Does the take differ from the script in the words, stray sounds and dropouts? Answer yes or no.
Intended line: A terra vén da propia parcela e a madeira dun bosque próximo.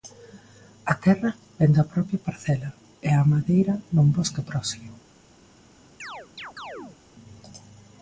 yes